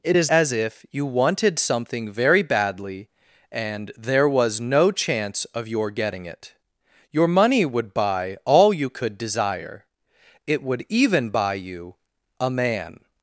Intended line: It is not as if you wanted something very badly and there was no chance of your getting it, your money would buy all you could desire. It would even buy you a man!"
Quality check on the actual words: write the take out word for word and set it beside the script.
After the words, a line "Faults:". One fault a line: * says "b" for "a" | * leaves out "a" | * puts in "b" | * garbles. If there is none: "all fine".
It is as if you wanted something very badly and there was no chance of your getting it, your money would buy all you could desire. It would even buy you a man!"
Faults:
* leaves out "not"